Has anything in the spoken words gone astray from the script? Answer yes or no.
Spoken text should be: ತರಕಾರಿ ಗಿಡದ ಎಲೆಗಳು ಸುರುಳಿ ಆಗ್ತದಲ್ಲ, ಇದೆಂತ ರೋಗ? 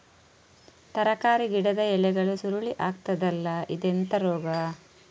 no